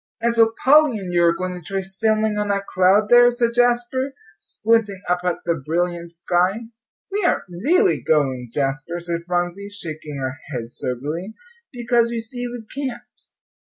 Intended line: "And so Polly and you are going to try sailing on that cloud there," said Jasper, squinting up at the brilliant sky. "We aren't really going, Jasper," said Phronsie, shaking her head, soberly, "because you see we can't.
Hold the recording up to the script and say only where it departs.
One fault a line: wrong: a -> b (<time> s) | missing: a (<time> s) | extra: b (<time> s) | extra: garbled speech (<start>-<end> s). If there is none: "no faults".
no faults